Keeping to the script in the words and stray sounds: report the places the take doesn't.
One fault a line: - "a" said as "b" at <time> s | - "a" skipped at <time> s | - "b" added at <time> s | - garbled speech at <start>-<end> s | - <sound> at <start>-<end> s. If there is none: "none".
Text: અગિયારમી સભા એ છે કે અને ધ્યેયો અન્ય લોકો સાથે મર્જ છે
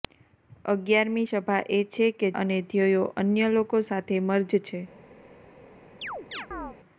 - chirp at 6.0-6.8 s